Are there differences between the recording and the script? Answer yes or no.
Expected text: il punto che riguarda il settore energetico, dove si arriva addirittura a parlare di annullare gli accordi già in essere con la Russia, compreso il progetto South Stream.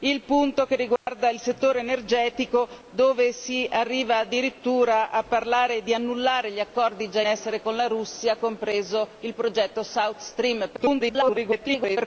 yes